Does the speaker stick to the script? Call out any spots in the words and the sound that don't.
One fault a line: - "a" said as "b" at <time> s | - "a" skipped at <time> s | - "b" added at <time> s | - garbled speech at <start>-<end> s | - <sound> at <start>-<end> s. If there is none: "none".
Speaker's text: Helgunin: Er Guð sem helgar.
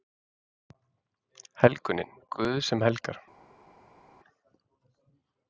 none